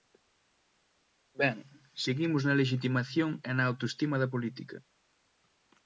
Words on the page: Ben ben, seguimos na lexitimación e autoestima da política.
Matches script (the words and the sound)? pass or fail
fail